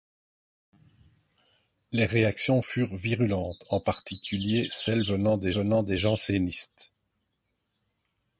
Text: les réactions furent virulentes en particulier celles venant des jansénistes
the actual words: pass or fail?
fail